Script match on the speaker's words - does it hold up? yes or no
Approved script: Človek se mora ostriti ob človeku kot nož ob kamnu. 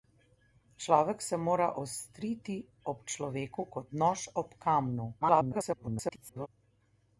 no